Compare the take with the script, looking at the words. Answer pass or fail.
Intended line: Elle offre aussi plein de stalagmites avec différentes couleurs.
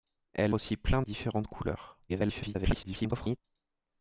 fail